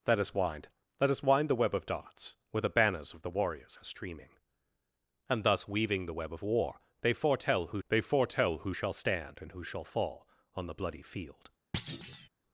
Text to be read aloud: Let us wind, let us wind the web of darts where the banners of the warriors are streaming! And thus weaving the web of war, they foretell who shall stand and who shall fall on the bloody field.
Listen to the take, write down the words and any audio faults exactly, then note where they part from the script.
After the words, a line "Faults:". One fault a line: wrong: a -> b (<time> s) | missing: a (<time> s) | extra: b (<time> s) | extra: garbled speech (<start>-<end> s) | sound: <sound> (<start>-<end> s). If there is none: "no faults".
Let us wind, let us wind the web of darts where the banners of the warriors are streaming! And thus weaving the web of war, they foretell who they foretell who shall stand and who shall fall on the bloody field.
Faults:
extra: they foretell who (7.9 s)
sound: thud (11.7-12.3 s)